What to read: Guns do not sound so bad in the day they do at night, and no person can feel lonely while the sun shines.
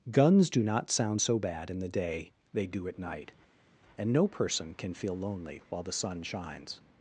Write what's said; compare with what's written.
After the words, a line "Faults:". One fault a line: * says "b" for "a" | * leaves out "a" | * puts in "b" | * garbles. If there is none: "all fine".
Guns do not sound so bad in the day they do at night, and no person can feel lonely while the sun shines.
Faults:
all fine